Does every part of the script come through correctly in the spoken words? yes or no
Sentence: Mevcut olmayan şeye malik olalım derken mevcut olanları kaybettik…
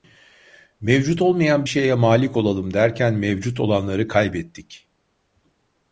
yes